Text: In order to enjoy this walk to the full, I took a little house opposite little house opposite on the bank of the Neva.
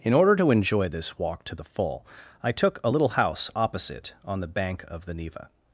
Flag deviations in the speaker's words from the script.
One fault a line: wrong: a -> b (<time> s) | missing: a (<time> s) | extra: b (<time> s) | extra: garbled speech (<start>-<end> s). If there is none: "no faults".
missing: little house opposite (4.1 s)